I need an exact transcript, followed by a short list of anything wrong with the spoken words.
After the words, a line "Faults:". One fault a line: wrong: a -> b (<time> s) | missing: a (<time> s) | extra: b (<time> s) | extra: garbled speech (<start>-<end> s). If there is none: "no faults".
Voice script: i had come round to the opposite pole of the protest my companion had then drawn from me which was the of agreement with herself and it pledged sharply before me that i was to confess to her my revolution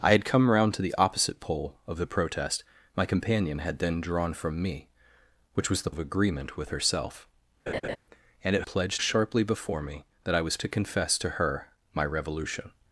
i had come round to the opposite pole of the protest my companion had then drawn from me which was the of agreement with herself and it pledged sharply before me that i was to confess to her my revolution
Faults:
no faults